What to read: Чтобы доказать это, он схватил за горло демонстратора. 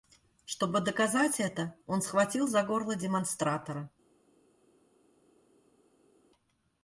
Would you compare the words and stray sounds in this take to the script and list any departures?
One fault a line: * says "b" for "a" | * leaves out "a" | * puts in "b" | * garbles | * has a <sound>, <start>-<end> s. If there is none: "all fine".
all fine